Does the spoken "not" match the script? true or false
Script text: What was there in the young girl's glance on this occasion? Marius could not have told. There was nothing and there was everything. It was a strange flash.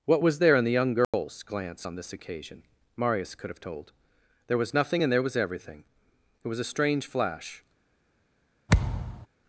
false